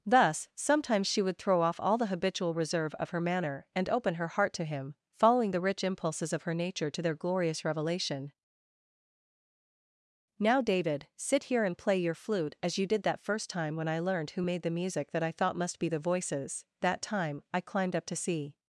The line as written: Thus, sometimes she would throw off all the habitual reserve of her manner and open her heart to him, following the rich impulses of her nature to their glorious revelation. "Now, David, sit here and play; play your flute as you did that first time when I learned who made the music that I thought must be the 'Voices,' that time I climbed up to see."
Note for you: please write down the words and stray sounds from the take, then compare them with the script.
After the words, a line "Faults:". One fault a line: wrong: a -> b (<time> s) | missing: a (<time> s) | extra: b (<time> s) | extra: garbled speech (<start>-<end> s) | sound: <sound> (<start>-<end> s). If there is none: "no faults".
Thus, sometimes she would throw off all the habitual reserve of her manner and open her heart to him, following the rich impulses of her nature to their glorious revelation. "Now, David, sit here and play; your flute as you did that first time when I learned who made the music that I thought must be the 'Voices,' that time I climbed up to see."
Faults:
missing: play (12.0 s)